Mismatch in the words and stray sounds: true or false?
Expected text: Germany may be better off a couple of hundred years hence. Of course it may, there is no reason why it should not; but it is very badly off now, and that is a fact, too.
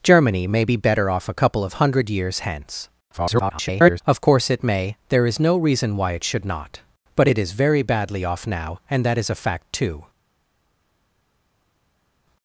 true